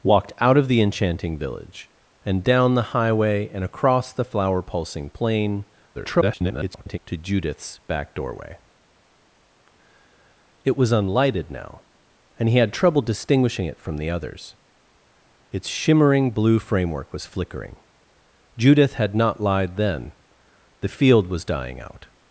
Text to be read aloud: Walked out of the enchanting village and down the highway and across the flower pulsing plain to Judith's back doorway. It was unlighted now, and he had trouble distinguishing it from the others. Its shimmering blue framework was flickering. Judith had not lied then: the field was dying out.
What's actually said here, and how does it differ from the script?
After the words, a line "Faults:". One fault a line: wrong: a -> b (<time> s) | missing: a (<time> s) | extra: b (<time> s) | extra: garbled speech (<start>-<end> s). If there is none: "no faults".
Walked out of the enchanting village and down the highway and across the flower pulsing plain [garbled] to Judith's back doorway. It was unlighted now, and he had trouble distinguishing it from the others. Its shimmering blue framework was flickering. Judith had not lied then: the field was dying out.
Faults:
extra: garbled speech (5.9-7.0 s)